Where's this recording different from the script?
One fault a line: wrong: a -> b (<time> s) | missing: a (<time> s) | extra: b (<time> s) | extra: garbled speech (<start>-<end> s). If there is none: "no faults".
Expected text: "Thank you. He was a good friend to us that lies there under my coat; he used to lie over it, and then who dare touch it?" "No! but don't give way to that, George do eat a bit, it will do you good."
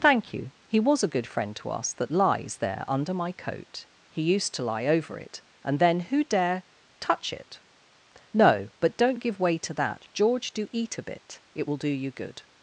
no faults